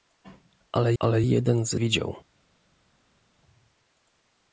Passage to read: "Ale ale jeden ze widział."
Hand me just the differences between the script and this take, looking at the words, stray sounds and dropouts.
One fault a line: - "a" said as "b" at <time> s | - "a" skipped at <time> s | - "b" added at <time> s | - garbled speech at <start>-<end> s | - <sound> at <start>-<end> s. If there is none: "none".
none